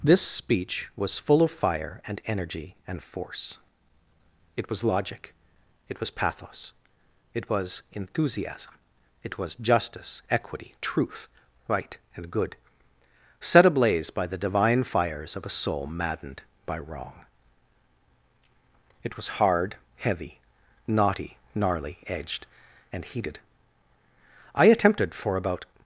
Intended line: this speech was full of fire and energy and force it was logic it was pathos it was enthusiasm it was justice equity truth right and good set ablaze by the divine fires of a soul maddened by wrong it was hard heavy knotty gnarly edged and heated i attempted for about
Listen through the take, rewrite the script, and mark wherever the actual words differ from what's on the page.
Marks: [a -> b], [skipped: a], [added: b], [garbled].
this speech was full of fire and energy and force it was logic it was pathos it was enthusiasm it was justice equity truth right and good set ablaze by the divine fires of a soul maddened by wrong it was hard heavy knotty gnarly edged and heated i attempted for about